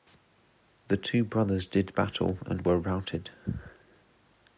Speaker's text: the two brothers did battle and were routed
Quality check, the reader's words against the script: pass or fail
pass